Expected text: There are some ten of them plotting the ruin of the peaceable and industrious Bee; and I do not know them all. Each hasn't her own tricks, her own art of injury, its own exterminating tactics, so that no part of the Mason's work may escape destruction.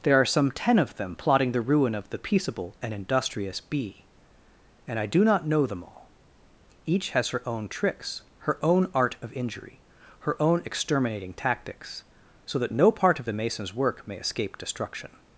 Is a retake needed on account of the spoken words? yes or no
yes